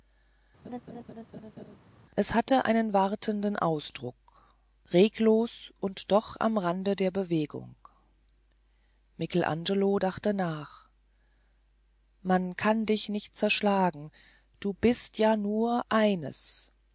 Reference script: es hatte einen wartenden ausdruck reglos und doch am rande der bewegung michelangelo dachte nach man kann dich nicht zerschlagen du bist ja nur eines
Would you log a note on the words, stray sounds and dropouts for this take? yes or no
yes